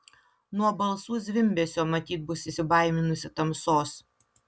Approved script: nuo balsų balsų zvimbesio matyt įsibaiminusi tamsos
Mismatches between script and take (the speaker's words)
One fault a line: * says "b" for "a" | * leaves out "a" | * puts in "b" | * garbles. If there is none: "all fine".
* leaves out "balsų"
* puts in "bus"